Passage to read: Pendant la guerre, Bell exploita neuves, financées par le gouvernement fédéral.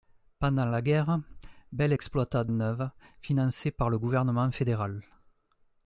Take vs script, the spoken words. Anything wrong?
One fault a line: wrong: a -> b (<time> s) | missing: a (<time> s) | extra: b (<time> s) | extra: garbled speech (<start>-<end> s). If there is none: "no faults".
no faults